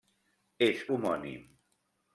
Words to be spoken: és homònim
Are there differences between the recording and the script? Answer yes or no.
no